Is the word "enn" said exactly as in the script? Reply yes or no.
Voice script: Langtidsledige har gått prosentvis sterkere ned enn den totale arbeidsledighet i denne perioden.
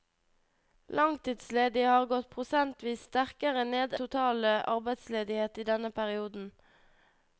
no